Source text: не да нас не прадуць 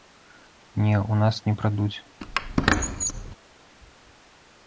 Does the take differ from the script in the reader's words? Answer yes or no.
yes